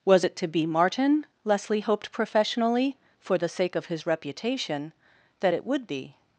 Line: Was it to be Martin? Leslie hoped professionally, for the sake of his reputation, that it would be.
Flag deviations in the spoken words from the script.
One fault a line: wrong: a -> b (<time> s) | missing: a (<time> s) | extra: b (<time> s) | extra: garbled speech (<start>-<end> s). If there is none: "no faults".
no faults